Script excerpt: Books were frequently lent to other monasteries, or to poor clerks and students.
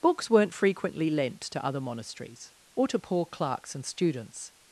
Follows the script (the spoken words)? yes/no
no